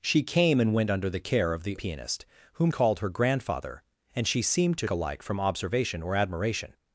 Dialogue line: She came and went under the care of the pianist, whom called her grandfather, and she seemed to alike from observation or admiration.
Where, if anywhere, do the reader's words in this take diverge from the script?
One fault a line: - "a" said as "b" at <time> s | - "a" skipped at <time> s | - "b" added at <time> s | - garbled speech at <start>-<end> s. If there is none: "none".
none